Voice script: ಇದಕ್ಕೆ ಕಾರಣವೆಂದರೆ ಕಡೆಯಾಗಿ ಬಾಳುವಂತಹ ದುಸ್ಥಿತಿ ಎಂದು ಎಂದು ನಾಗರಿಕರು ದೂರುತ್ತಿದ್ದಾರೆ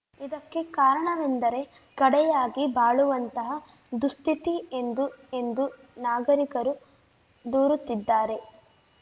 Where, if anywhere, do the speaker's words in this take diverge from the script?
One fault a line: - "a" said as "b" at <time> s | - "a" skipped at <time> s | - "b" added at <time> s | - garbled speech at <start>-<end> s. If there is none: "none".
none